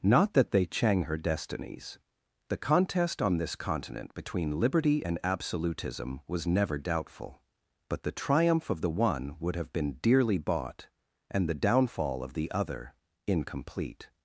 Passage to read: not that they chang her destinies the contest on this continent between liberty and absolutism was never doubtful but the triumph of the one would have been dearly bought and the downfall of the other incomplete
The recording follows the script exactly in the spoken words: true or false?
true